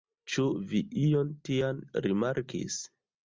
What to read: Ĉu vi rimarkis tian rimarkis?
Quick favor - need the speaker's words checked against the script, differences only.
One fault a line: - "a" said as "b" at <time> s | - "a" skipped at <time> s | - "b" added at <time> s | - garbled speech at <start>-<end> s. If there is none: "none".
- "rimarkis" said as "ion" at 1.0 s